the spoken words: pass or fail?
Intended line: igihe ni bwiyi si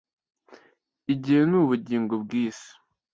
fail